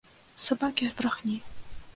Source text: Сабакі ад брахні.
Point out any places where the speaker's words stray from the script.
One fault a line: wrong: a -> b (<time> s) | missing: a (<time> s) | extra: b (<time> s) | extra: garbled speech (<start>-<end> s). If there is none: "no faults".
no faults